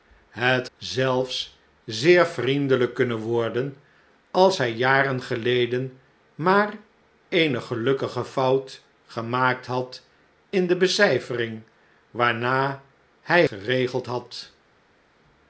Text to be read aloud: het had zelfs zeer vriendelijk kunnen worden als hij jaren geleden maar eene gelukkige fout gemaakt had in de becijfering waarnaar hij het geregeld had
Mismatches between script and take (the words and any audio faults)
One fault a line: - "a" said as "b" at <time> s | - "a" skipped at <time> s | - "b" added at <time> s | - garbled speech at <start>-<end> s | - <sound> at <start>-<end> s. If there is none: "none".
- "had" skipped at 0.7 s
- "het" skipped at 13.5 s